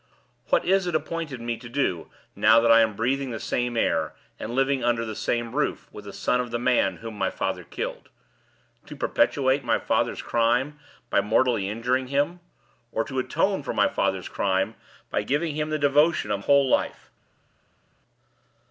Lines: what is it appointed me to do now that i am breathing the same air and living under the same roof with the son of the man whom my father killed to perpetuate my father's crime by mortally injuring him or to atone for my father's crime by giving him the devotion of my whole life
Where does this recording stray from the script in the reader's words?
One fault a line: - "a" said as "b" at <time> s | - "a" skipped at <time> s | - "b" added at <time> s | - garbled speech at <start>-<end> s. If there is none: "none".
- "my" skipped at 16.4 s